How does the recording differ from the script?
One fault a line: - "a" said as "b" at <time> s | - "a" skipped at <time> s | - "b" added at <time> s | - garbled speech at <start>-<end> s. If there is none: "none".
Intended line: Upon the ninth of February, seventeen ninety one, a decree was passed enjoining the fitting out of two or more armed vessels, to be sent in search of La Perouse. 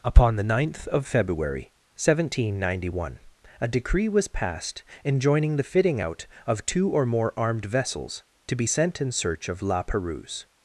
none